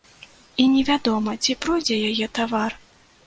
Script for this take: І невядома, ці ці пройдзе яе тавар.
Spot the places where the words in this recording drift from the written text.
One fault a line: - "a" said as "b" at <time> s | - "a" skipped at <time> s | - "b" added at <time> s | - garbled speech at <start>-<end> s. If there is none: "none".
- "ці" skipped at 1.6 s